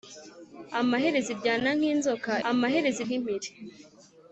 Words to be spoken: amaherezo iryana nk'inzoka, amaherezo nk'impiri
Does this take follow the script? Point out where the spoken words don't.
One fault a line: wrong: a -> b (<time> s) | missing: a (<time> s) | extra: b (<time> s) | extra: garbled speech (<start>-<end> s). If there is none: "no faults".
no faults